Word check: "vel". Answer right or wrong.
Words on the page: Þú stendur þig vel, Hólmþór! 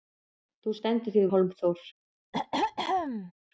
wrong